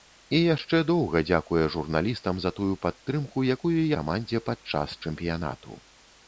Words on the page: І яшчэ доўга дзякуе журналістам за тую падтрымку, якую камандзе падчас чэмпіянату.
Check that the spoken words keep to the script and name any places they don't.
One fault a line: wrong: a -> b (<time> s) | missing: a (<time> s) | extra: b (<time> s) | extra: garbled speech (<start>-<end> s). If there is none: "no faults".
no faults